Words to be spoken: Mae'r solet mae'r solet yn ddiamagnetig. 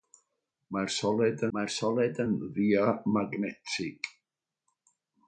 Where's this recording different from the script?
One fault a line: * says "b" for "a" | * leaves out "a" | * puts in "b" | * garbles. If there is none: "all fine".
all fine